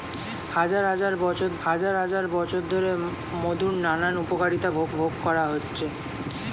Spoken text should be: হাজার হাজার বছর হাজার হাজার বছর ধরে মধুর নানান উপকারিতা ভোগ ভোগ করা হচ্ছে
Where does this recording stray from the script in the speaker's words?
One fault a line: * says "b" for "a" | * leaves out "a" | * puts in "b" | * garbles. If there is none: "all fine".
all fine